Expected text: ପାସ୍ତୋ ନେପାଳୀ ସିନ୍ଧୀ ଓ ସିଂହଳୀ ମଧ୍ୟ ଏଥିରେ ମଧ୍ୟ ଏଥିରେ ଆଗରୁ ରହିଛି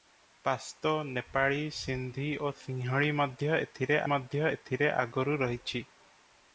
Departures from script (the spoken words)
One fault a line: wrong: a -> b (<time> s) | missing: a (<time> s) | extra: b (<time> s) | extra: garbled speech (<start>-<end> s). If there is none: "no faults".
no faults